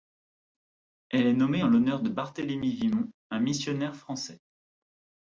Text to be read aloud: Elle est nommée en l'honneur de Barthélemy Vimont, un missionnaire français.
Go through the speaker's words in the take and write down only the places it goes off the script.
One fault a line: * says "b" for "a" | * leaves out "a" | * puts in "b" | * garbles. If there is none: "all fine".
all fine